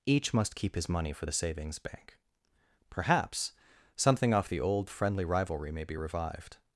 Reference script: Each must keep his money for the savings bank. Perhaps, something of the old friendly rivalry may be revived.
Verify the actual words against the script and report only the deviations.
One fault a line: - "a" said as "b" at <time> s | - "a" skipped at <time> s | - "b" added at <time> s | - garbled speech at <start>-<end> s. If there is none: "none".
- "of" said as "off" at 4.3 s